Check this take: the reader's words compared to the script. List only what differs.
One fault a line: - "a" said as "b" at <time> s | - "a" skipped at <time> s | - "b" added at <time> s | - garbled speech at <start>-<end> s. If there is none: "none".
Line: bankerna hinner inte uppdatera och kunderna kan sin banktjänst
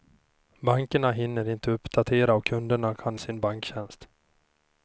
none